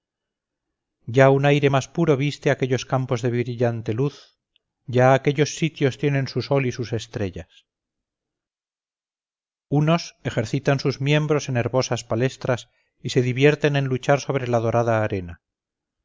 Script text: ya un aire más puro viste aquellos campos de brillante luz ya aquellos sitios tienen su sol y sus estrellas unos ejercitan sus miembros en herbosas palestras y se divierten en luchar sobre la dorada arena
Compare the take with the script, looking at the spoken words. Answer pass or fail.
pass